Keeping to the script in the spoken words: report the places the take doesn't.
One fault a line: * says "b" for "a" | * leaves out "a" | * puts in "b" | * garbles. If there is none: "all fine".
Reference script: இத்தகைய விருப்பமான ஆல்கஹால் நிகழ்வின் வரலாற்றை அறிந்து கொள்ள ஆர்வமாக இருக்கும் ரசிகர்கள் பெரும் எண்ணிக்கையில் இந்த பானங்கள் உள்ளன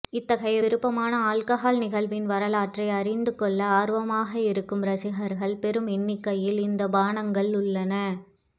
all fine